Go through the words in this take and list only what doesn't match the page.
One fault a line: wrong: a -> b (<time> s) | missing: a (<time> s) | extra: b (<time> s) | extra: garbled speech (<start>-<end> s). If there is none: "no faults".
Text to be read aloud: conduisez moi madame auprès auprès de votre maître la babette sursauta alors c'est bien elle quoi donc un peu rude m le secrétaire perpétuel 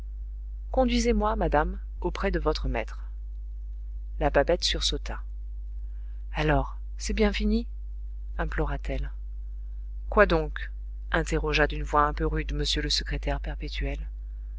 missing: auprès (2.3 s)
extra: fini implora t (7.3 s)
extra: interrogea d'une voix (11.1 s)